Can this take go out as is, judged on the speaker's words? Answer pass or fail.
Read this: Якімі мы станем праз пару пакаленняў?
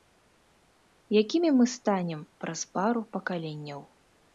pass